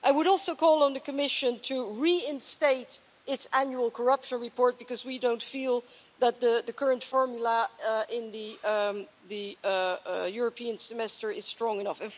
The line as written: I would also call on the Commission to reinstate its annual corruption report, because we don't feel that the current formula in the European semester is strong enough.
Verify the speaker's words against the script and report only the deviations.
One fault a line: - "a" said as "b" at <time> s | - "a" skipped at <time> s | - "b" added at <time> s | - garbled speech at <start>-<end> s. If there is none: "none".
none